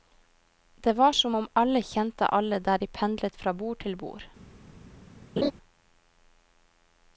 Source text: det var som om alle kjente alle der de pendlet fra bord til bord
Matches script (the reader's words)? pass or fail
pass